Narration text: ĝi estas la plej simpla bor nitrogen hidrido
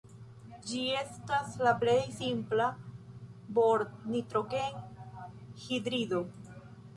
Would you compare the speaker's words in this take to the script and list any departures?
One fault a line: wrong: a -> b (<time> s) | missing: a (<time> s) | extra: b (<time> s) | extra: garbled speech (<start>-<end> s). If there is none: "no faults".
no faults